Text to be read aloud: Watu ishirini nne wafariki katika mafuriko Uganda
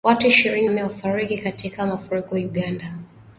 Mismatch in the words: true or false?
false